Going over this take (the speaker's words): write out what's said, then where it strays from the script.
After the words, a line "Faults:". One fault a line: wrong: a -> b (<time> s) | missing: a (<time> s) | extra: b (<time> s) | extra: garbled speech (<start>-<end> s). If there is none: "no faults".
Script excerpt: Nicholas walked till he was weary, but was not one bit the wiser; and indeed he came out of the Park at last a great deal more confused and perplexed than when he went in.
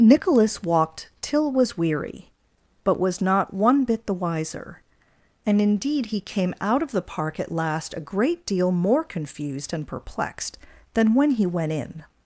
Nicholas walked till was weary, but was not one bit the wiser; and indeed he came out of the Park at last a great deal more confused and perplexed than when he went in.
Faults:
missing: he (1.5 s)